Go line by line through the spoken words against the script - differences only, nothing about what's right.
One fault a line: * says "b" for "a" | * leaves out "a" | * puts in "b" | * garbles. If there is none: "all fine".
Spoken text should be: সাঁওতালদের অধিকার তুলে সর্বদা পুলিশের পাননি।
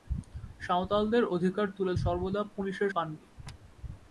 all fine